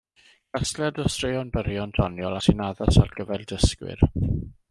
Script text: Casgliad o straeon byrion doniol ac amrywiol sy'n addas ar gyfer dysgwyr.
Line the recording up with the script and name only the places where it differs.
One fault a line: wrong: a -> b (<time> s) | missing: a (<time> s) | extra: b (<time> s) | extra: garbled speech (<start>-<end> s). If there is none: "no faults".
missing: ac amrywiol (2.4 s)